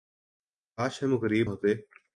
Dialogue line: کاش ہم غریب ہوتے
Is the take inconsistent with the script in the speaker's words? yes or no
no